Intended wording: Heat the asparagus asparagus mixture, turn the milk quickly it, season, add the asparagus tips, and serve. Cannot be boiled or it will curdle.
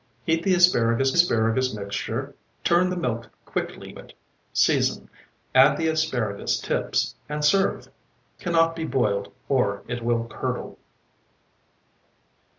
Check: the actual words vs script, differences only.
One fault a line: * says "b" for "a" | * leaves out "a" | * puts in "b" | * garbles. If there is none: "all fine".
all fine